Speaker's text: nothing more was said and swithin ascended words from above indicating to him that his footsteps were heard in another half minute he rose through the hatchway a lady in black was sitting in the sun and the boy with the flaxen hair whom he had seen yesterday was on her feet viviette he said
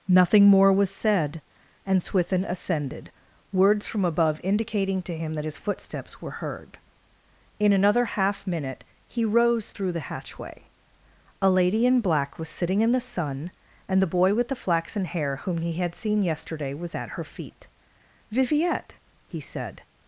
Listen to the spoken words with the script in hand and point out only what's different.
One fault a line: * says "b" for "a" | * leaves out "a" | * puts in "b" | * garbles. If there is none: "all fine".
* says "at" for "on"